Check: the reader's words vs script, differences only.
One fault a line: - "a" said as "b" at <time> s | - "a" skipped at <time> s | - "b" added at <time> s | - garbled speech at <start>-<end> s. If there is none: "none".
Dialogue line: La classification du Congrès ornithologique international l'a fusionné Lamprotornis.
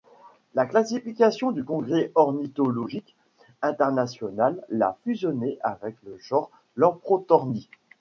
- "avec le genre" added at 5.6 s